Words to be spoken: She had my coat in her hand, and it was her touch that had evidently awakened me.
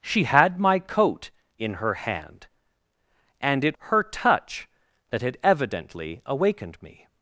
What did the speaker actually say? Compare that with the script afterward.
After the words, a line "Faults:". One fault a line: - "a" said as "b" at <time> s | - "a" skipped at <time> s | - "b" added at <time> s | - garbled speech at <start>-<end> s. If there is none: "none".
She had my coat in her hand, and it her touch that had evidently awakened me.
Faults:
- "was" skipped at 3.8 s